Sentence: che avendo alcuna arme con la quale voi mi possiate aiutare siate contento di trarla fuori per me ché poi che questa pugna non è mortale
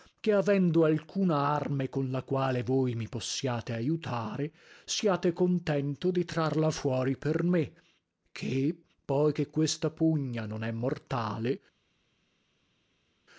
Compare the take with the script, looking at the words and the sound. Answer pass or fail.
pass